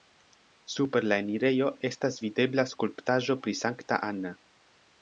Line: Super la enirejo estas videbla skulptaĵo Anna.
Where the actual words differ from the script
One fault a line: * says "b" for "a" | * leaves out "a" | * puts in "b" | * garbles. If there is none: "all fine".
* puts in "pri Sankta"